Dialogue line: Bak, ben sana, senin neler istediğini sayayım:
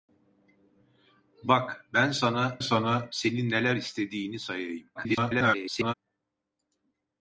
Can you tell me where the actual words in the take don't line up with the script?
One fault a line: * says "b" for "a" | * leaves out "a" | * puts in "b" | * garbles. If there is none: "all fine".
* puts in "sana"
* garbles